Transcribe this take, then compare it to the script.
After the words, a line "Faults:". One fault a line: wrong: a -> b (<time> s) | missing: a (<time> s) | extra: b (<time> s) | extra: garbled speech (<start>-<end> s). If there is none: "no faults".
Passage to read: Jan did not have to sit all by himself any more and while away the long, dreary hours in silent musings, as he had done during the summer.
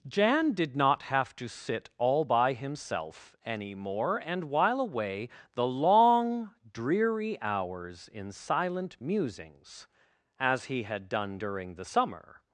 Jan did not have to sit all by himself any more and while away the long, dreary hours in silent musings, as he had done during the summer.
Faults:
no faults